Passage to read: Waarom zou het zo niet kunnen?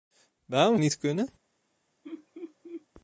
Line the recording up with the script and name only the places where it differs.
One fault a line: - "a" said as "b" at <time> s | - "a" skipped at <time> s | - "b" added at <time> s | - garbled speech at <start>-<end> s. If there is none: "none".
- "zou het zo" skipped at 0.8 s